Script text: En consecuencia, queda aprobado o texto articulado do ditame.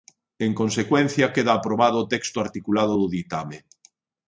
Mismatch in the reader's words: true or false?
false